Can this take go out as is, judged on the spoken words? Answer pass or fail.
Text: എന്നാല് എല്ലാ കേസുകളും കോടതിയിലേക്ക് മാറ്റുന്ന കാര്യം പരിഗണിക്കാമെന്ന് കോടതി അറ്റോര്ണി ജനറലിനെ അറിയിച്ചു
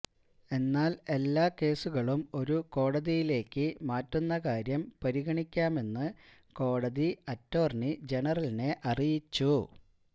fail